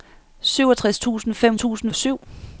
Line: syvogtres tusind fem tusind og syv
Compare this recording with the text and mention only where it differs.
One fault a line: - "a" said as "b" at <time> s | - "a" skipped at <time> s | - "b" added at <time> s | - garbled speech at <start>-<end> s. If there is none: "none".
none